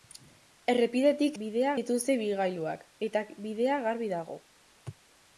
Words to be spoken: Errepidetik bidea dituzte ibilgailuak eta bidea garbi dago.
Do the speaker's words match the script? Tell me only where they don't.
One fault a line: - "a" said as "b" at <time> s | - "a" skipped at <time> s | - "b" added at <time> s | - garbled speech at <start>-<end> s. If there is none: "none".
none